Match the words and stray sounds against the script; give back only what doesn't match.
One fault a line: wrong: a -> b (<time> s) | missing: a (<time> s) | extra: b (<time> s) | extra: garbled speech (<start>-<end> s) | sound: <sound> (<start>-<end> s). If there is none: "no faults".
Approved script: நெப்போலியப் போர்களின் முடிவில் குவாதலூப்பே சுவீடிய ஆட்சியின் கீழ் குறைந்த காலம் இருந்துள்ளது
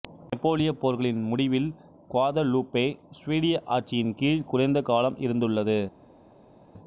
no faults